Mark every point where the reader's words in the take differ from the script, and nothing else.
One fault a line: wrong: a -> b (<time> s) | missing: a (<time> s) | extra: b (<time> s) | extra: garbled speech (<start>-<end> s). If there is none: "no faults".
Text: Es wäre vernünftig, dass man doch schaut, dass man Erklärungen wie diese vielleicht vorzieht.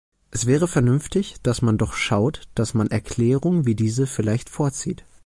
no faults